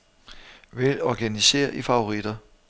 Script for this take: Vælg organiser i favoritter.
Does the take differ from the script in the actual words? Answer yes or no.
no